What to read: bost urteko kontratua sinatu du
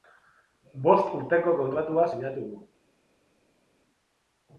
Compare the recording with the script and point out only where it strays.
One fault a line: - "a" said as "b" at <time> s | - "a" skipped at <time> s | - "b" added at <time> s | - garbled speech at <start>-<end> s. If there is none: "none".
none